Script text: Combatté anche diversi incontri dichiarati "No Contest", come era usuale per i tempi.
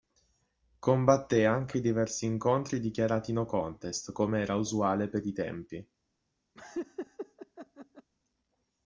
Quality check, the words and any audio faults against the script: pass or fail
fail